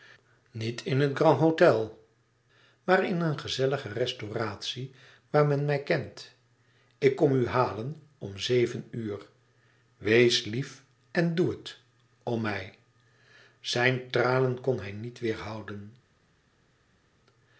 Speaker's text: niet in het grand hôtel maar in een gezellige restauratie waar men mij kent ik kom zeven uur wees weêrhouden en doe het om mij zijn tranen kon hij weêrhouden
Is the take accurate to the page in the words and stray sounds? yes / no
no